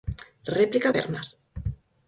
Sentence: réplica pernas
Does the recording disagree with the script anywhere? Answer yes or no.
no